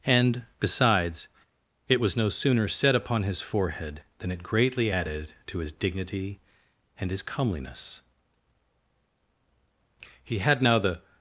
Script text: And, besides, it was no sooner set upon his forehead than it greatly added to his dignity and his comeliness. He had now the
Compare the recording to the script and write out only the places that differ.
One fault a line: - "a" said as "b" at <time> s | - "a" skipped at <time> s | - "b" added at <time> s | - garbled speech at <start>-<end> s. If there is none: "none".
none